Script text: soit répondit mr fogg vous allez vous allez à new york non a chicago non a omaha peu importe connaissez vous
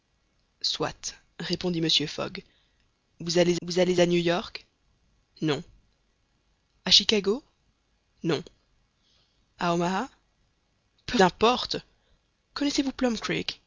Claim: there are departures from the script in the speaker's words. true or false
false